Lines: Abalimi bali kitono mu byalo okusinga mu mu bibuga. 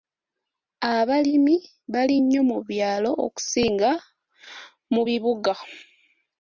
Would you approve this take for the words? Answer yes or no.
no